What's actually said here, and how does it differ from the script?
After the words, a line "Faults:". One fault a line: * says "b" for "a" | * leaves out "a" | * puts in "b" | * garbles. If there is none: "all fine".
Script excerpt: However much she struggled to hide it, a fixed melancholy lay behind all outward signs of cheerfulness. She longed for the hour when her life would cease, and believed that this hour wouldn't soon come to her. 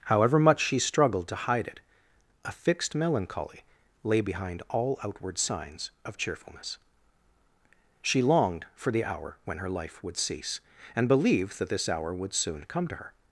However much she struggled to hide it, a fixed melancholy lay behind all outward signs of cheerfulness. She longed for the hour when her life would cease, and believed that this hour would soon come to her.
Faults:
* says "would" for "wouldn't"